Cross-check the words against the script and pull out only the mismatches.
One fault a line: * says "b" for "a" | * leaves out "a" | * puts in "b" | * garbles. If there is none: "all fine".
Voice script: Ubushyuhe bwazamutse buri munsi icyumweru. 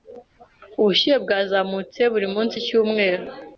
all fine